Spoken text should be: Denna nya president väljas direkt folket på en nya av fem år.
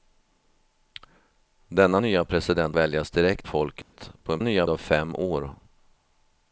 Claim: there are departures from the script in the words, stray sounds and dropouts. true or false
true